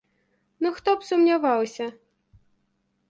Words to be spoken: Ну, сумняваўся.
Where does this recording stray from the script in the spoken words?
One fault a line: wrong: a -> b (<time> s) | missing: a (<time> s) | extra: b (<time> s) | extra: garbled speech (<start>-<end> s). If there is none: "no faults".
extra: хто б (0.8 s)